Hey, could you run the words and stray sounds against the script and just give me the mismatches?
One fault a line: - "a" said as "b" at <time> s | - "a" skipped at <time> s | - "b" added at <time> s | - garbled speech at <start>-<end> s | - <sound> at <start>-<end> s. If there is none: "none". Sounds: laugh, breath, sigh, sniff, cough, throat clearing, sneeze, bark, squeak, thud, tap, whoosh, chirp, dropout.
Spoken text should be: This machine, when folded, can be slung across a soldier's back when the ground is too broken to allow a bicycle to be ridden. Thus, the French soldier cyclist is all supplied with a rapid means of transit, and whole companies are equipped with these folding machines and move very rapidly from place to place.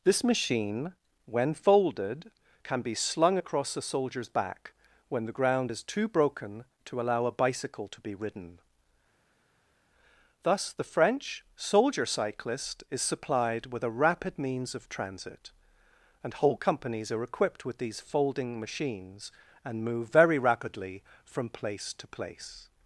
- "all" skipped at 13.0 s